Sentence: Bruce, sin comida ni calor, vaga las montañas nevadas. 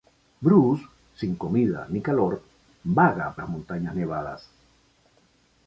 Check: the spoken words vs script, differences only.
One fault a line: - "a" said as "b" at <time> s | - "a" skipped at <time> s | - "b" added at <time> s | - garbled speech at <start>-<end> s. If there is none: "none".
none